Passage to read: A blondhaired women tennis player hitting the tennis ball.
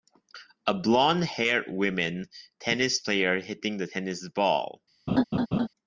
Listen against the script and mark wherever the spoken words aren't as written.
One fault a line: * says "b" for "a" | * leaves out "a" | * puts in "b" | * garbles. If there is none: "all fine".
all fine